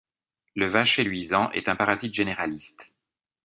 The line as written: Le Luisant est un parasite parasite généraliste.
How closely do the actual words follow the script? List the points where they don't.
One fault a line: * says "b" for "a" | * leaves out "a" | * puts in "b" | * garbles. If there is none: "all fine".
* puts in "Vacher"
* leaves out "parasite"